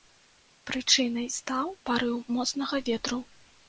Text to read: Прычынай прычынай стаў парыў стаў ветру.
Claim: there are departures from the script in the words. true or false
true